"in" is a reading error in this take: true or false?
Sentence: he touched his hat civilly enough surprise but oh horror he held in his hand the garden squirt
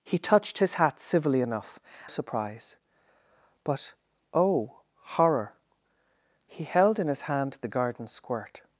false